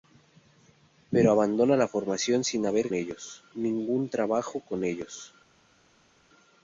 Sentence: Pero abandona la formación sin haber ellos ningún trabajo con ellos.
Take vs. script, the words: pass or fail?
pass